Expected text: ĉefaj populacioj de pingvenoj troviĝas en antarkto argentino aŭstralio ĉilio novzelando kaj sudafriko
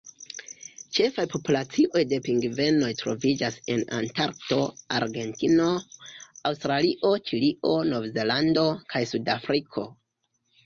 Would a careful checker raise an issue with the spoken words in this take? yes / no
no